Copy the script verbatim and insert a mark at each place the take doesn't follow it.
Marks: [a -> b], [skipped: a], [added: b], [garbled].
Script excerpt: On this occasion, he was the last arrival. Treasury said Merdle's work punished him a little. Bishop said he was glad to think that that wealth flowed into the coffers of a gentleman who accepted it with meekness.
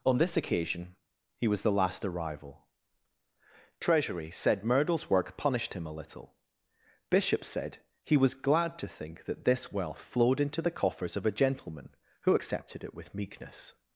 On this occasion, he was the last arrival. Treasury said Merdle's work punished him a little. Bishop said he was glad to think that [that -> this] wealth flowed into the coffers of a gentleman who accepted it with meekness.